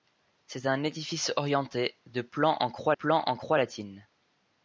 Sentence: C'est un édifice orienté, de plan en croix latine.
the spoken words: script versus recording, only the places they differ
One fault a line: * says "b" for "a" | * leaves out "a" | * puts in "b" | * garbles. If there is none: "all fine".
* puts in "plan en croix"